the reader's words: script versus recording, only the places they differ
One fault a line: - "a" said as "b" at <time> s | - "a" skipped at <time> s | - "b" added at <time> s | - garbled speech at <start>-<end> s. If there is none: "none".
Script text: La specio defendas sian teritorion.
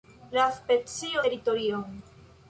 - "defendas sian" skipped at 1.2 s